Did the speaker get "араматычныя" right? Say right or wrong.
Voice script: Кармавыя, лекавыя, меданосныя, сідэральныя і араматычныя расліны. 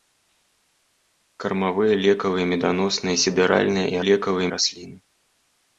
wrong